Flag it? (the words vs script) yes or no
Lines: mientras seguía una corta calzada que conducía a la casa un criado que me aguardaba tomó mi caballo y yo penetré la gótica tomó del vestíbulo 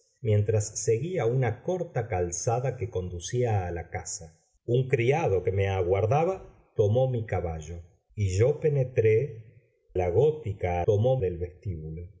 no